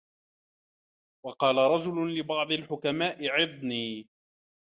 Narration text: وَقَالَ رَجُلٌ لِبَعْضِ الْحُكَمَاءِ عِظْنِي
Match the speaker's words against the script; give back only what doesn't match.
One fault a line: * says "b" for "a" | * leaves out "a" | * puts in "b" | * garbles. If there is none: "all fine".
all fine